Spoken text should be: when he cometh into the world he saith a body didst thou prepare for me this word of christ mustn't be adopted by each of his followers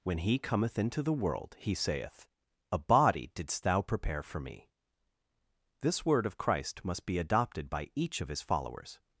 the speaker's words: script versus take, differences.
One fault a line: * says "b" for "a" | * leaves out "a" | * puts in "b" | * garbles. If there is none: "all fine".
* says "must" for "mustn't"